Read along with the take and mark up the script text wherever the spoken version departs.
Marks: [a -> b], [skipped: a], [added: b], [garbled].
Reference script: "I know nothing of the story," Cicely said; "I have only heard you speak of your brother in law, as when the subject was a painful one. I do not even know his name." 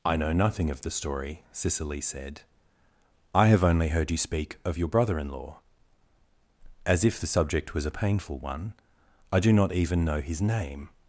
"I know nothing of the story," Cicely said; "I have only heard you speak of your brother in law, as [when -> if] the subject was a painful one. I do not even know his name."